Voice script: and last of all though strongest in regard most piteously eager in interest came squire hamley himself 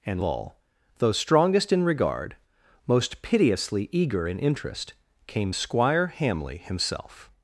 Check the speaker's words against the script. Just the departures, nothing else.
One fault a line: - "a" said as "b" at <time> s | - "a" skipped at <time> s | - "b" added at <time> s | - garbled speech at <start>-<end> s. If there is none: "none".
- "last of" skipped at 0.2 s